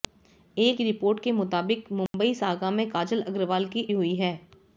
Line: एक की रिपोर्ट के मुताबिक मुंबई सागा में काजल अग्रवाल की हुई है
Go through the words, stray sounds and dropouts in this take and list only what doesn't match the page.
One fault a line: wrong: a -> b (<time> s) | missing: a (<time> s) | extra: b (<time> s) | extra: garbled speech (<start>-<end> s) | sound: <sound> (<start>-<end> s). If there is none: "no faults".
sound: dropout (2.1-2.1 s)